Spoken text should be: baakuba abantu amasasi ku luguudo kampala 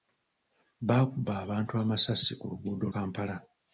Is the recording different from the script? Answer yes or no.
no